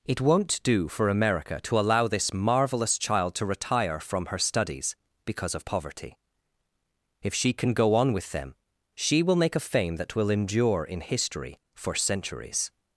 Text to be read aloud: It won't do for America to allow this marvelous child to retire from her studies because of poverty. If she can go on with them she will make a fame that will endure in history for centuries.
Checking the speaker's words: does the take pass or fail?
pass